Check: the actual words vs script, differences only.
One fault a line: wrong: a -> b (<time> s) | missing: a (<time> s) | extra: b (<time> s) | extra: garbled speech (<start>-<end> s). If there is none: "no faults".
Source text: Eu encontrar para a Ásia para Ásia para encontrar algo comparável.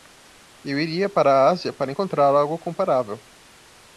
wrong: encontrar -> iria (0.8 s)
missing: Ásia para (1.9 s)